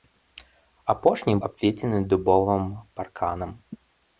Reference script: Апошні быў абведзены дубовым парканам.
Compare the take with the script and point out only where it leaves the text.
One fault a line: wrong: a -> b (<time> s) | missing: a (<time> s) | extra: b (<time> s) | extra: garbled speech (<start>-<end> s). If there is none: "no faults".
missing: быў (1.4 s)